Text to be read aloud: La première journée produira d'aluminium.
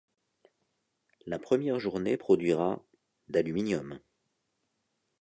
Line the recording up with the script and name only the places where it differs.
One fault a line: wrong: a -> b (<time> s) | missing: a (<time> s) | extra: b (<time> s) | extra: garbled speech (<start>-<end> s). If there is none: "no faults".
no faults